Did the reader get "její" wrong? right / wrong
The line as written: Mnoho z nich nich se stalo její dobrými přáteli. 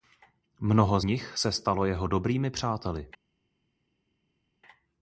wrong